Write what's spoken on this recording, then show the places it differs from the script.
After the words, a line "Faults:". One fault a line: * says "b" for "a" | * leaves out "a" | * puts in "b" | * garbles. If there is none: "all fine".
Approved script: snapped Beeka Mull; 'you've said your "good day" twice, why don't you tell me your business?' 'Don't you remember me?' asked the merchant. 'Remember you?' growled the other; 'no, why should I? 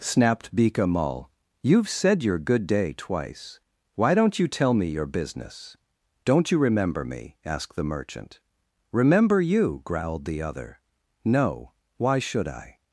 snapped Beeka Mull; 'you've said your "good day" twice, why don't you tell me your business?' 'Don't you remember me?' asked the merchant. 'Remember you?' growled the other; 'no, why should I?
Faults:
all fine